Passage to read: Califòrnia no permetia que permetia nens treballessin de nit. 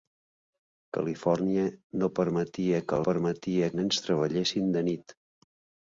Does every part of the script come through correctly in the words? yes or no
yes